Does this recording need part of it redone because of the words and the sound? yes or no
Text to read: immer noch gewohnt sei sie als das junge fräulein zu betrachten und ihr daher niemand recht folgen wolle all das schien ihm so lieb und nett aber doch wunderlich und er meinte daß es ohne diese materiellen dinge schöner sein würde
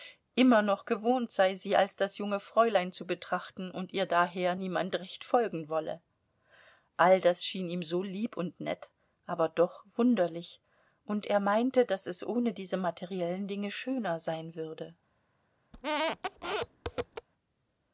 yes